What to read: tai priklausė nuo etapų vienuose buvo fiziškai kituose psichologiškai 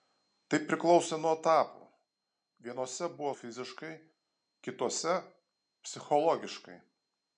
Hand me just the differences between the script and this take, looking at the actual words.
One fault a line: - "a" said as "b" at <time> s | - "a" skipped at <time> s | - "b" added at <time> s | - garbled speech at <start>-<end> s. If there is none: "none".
none